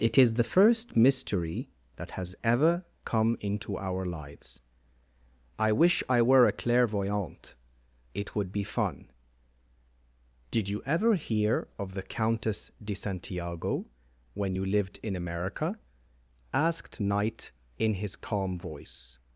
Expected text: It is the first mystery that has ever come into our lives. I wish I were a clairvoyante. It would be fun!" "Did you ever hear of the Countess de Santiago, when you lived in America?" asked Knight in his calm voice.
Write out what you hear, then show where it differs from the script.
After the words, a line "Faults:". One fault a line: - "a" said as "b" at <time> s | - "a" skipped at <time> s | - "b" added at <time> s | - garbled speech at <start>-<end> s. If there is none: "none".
It is the first mystery that has ever come into our lives. I wish I were a clairvoyante. It would be fun!" "Did you ever hear of the Countess de Santiago, when you lived in America?" asked Knight in his calm voice.
Faults:
none